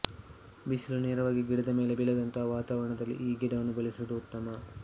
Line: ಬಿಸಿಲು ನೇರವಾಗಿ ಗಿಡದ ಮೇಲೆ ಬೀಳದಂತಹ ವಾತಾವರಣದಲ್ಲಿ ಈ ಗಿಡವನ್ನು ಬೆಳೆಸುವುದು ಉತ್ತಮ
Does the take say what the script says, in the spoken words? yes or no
yes